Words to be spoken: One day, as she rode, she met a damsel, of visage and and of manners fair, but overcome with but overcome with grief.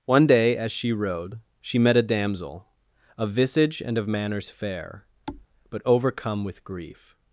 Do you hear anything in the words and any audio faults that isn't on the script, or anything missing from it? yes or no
yes